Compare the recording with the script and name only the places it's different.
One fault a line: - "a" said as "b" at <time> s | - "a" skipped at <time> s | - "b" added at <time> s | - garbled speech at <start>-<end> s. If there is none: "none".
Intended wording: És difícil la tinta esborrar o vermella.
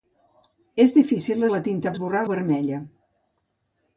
none